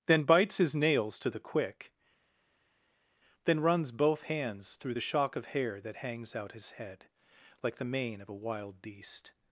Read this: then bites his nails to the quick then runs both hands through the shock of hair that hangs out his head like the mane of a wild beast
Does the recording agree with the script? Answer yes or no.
yes